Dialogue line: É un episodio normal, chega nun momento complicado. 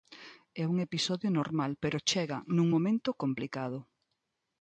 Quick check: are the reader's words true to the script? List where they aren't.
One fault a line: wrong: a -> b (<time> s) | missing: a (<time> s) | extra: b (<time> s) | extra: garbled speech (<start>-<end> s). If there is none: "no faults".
extra: pero (1.8 s)